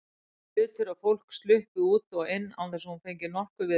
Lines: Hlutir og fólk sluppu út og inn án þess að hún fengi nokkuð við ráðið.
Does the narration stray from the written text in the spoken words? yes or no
no